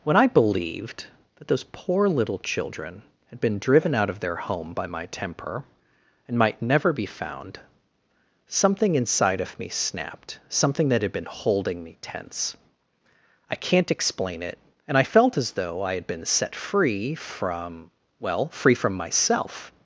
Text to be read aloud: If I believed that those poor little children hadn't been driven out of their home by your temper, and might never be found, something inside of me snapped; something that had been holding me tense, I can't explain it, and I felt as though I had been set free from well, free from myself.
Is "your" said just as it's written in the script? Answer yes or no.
no